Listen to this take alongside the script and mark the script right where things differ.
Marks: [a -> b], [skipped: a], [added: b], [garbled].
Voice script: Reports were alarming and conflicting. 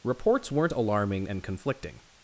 Reports [were -> weren't] alarming and conflicting.